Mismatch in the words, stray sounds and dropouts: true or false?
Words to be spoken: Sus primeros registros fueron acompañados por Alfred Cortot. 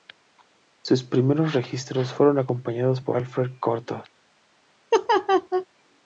true